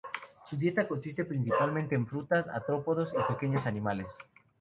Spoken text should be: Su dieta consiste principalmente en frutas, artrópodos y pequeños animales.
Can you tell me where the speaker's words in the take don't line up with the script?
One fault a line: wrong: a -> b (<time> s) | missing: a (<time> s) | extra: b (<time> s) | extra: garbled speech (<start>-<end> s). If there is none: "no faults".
no faults